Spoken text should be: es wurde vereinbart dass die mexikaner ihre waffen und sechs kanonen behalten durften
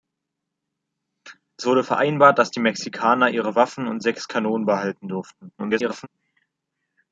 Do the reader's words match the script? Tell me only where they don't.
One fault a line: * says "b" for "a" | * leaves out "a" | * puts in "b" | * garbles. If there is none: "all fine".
* garbles